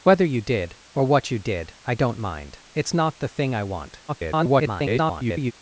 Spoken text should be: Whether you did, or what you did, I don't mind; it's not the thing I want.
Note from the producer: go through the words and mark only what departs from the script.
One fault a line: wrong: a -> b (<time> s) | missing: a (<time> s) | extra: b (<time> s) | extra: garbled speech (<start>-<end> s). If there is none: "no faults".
extra: garbled speech (4.1-5.5 s)